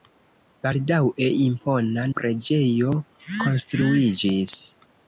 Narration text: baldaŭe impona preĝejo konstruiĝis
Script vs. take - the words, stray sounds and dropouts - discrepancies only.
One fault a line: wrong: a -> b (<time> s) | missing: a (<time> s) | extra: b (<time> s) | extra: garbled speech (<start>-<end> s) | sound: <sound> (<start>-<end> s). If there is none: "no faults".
no faults